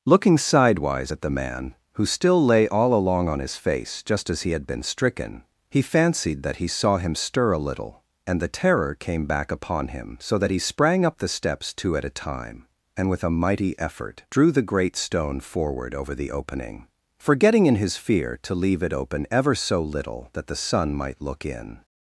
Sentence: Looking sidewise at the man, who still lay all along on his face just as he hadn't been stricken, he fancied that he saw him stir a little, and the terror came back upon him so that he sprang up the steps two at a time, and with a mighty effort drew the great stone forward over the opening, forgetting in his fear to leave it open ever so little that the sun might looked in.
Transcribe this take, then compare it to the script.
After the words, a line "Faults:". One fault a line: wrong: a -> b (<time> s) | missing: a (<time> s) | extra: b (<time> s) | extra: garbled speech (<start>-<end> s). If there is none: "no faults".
Looking sidewise at the man, who still lay all along on his face just as he had been stricken, he fancied that he saw him stir a little, and the terror came back upon him so that he sprang up the steps two at a time, and with a mighty effort drew the great stone forward over the opening, forgetting in his fear to leave it open ever so little that the sun might look in.
Faults:
wrong: hadn't -> had (4.5 s)
wrong: looked -> look (21.2 s)